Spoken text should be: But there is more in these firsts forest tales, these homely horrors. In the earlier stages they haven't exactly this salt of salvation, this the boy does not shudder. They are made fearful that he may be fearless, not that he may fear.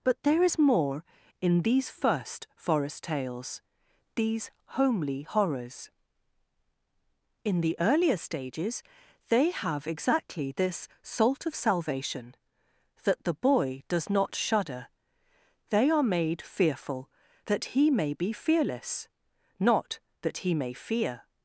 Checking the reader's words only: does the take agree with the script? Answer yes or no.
no